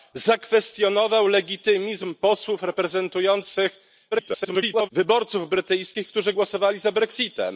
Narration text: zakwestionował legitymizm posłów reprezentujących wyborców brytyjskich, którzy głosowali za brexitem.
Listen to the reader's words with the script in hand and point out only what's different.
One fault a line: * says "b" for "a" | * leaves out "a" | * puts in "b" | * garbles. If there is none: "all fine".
* garbles